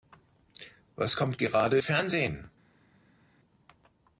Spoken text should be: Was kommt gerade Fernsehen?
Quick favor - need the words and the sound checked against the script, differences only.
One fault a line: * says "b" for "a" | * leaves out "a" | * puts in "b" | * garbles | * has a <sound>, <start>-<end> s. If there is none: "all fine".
all fine